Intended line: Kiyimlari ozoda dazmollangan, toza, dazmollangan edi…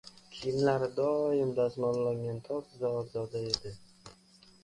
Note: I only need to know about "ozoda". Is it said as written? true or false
false